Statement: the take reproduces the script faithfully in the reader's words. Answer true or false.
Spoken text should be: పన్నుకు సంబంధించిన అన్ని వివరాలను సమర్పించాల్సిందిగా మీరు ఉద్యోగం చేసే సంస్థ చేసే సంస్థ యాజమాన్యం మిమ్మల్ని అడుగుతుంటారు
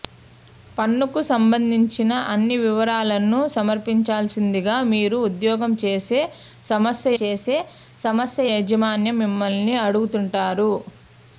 true